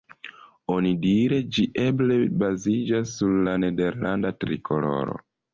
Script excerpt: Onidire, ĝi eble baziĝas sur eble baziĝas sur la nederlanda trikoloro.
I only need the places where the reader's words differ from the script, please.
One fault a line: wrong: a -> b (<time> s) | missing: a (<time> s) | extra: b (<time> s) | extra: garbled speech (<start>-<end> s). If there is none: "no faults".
missing: eble baziĝas sur (3.4 s)